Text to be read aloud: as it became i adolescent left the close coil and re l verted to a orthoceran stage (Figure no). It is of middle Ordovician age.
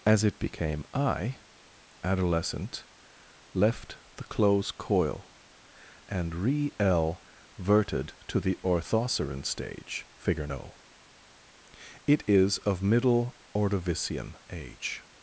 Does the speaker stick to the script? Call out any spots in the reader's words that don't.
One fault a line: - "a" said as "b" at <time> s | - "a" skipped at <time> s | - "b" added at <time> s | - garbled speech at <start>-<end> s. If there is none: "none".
- "a" said as "the" at 8.4 s